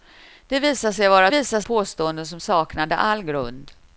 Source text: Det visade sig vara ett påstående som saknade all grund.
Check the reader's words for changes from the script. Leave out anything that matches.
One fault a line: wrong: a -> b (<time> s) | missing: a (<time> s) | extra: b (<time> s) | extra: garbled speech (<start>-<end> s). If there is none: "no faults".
wrong: ett -> visade (1.3 s)